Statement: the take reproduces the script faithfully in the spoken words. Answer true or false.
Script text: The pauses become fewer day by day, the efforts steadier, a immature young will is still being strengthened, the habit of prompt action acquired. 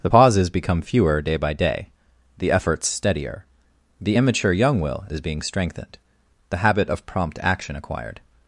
false